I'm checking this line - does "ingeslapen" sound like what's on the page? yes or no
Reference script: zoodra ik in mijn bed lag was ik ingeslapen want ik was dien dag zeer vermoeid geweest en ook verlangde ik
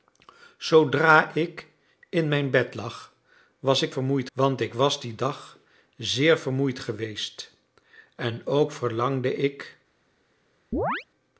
no